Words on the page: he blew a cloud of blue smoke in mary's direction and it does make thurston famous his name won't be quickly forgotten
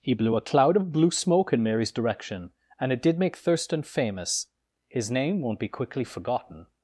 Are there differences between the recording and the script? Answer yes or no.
yes